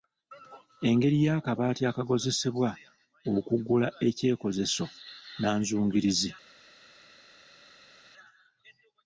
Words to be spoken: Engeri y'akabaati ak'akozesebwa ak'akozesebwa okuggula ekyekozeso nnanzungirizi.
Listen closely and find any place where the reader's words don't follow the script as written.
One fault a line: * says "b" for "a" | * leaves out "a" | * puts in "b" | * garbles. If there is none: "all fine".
* leaves out "ak'akozesebwa"